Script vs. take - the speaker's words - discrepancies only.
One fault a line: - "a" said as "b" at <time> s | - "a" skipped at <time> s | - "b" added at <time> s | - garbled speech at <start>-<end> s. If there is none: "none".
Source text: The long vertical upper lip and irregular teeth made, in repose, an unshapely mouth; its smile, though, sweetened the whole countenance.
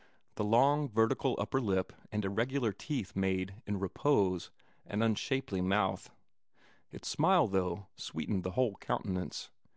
none